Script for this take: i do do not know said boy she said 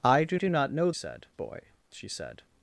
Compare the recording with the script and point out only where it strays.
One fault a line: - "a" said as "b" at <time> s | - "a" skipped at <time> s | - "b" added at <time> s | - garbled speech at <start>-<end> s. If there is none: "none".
none